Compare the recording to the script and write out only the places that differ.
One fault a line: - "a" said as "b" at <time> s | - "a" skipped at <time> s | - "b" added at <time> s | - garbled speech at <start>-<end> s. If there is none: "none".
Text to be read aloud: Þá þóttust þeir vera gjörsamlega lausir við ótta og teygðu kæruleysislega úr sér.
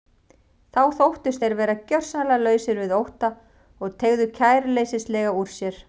none